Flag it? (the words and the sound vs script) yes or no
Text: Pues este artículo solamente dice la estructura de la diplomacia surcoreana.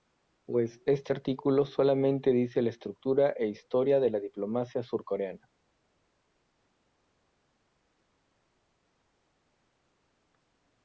yes